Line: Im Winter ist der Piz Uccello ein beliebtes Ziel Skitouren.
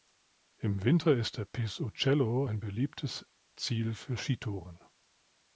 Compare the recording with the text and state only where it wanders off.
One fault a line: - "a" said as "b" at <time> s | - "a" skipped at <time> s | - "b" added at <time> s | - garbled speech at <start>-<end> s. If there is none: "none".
- "für" added at 3.9 s